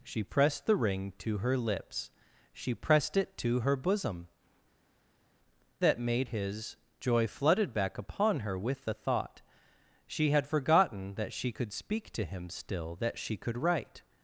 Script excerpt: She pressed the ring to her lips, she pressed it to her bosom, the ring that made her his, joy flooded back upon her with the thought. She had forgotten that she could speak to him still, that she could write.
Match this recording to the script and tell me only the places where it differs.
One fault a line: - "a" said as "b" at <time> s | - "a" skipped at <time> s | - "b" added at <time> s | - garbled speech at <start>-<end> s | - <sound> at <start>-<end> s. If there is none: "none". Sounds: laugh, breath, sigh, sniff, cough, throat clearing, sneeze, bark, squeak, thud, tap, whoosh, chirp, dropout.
- "the ring" skipped at 4.3 s
- "her" skipped at 6.3 s